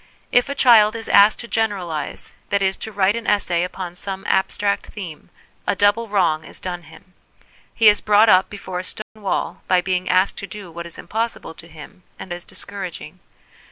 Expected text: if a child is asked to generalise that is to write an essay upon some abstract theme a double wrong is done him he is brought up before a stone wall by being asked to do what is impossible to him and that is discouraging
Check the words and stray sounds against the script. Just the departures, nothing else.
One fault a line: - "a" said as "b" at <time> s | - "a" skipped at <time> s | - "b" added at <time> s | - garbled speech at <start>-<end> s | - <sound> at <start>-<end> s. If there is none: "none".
- dropout at 9.0-9.2 s
- "that" skipped at 12.3 s